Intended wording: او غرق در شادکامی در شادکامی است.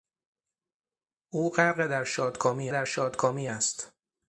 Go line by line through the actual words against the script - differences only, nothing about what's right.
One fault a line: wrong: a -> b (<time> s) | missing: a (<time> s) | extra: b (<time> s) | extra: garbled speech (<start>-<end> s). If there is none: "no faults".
no faults